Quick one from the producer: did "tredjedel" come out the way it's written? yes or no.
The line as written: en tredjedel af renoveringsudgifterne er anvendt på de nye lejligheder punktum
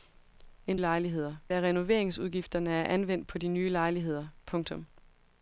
no